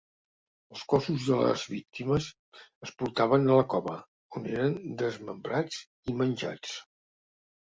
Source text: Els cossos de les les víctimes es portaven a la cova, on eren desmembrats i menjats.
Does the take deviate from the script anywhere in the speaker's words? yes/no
yes